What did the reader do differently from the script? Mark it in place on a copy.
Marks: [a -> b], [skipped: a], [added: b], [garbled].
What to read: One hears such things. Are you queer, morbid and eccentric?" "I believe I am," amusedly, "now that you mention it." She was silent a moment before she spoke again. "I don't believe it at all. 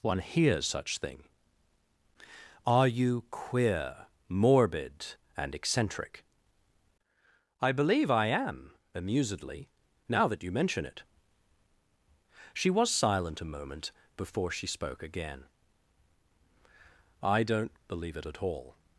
One hears such [things. -> thing] Are you queer, morbid and eccentric?" "I believe I am," amusedly, "now that you mention it." She was silent a moment before she spoke again. "I don't believe it at all.